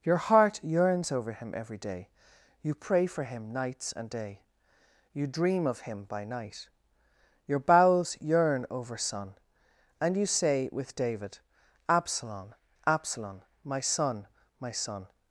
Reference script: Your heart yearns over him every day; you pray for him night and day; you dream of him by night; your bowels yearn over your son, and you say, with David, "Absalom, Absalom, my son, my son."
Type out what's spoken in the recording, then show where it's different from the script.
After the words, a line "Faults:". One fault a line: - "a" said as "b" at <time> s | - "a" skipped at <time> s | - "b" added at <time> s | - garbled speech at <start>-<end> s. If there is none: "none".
Your heart yearns over him every day; you pray for him nights and day; you dream of him by night; your bowels yearn over son, and you say, with David, "Absalom, Absalom, my son, my son."
Faults:
- "night" said as "nights" at 3.5 s
- "your" skipped at 9.0 s